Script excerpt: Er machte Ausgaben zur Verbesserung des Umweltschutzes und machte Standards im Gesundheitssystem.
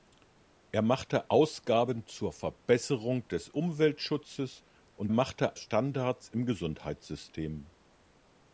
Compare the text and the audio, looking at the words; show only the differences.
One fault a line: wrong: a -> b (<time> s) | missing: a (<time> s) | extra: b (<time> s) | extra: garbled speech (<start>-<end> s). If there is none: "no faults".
no faults